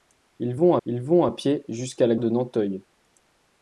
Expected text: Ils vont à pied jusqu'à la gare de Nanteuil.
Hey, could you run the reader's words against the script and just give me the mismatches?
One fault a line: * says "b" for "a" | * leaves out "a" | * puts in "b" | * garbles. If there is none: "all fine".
* puts in "ils vont"
* leaves out "gare"